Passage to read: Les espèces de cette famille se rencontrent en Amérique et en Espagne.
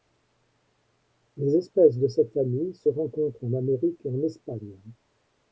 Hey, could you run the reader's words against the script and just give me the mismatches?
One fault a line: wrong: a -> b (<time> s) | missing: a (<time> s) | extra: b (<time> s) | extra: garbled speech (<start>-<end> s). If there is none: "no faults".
no faults